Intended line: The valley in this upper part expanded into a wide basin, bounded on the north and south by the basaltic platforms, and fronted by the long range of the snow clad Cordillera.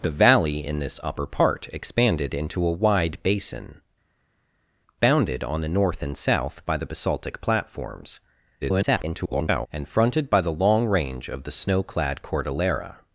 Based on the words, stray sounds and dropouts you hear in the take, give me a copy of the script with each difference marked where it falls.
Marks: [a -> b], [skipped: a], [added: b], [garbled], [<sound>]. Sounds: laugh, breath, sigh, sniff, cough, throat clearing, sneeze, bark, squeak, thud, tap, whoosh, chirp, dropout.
The valley in this upper part expanded into a wide basin, bounded on the north and south by the basaltic platforms, [garbled] and fronted by the long range of the snow clad Cordillera.